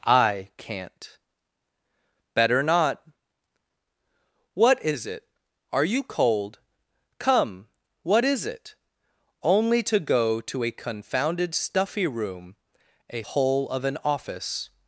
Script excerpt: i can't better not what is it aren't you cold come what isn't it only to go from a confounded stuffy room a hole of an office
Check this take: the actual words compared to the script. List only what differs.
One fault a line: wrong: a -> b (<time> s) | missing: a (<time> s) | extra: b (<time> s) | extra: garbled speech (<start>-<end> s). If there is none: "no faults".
wrong: aren't -> are (5.7 s)
wrong: isn't -> is (8.2 s)
wrong: from -> to (10.4 s)